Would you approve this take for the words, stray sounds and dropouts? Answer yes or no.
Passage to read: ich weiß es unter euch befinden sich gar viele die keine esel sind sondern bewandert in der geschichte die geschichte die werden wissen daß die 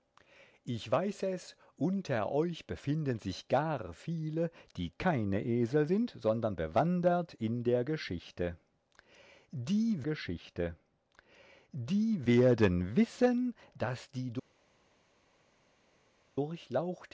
yes